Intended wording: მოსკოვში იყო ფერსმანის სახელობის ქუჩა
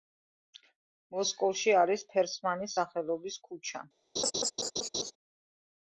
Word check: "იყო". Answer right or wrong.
wrong